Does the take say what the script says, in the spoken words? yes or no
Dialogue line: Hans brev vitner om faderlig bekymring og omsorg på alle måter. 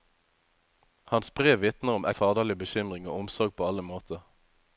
yes